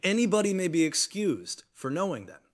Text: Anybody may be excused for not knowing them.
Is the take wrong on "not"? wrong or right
wrong